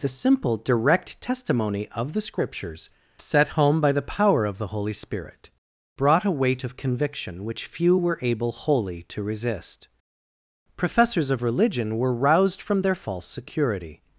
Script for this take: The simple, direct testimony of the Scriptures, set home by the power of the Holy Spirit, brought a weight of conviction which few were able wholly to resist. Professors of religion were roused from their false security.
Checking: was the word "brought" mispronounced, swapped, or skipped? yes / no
no